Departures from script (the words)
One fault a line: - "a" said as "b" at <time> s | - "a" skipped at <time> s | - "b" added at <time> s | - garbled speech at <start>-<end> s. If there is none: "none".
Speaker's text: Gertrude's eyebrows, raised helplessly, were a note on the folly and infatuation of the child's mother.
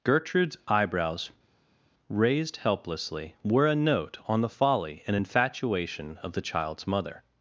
none